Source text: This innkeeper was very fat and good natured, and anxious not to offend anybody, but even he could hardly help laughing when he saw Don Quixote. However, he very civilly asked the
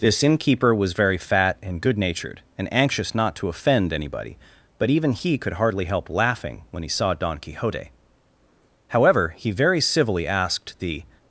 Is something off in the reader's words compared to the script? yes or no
no